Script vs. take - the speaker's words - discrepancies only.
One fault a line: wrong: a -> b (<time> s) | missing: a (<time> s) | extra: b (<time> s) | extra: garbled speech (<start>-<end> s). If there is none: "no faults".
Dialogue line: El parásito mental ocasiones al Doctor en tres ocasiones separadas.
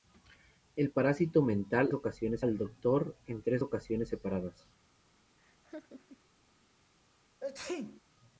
no faults